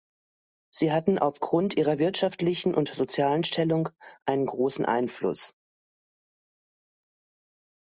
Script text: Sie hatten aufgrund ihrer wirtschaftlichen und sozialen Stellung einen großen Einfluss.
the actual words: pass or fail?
pass